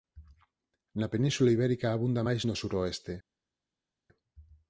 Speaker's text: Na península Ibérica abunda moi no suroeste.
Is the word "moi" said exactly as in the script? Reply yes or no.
no